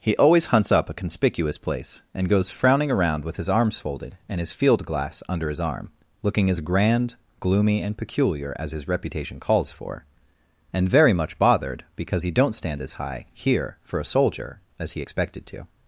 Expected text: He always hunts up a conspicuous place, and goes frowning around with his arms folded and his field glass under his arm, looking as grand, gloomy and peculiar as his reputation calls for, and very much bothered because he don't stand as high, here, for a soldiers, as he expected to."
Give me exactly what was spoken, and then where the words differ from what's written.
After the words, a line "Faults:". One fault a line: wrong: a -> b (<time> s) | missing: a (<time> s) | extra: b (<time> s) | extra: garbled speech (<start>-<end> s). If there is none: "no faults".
He always hunts up a conspicuous place, and goes frowning around with his arms folded and his field glass under his arm, looking as grand, gloomy and peculiar as his reputation calls for, and very much bothered because he don't stand as high, here, for a soldier, as he expected to."
Faults:
wrong: soldiers -> soldier (14.1 s)